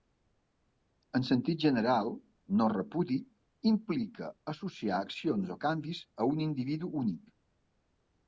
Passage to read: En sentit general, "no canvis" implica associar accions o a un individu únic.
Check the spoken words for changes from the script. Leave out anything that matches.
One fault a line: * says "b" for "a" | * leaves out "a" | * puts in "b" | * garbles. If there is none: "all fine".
* says "repudi" for "canvis"
* puts in "canvis"